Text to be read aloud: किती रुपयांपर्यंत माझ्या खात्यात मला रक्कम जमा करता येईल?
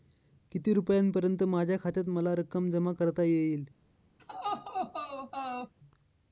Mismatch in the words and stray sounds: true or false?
true